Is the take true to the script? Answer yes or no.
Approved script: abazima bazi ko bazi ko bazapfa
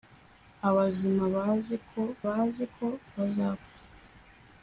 yes